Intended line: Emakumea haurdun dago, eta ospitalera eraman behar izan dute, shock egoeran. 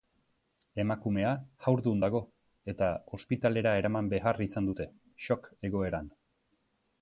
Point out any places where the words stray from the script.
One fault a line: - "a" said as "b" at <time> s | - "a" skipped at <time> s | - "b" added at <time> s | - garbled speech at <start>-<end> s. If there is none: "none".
none